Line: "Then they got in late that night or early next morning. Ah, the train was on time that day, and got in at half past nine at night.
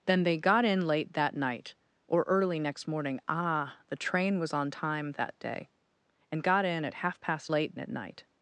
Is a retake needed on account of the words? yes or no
yes